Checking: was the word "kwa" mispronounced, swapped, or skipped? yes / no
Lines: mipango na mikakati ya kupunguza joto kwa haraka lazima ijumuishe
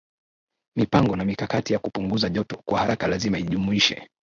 no